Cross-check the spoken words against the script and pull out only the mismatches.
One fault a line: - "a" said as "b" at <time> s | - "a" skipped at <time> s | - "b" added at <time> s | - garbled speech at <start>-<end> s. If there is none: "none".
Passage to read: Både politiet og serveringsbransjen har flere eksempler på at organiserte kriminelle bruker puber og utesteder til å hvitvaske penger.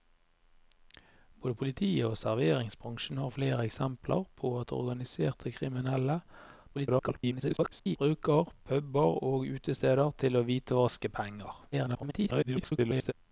- garbled speech at 6.7-8.0 s
- garbled speech at 11.7-13.1 s